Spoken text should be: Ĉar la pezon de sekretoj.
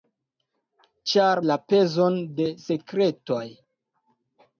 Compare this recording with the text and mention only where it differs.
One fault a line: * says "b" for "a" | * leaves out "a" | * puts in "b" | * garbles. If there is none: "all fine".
all fine